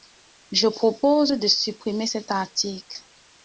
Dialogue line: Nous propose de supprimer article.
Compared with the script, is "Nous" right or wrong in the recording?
wrong